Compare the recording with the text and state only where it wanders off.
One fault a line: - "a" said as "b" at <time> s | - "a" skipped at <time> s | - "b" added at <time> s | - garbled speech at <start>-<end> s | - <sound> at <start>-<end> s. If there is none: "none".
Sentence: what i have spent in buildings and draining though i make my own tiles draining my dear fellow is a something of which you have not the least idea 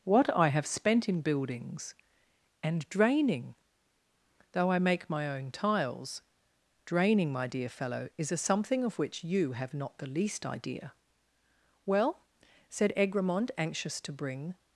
- "well said egremont anxious to bring" added at 11.8 s